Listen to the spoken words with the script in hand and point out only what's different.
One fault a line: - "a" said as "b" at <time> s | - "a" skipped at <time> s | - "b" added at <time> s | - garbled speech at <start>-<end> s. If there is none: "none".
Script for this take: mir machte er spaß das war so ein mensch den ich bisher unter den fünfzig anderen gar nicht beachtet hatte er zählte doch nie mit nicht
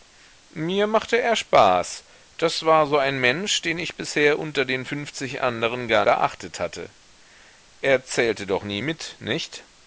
- "nicht" skipped at 6.0 s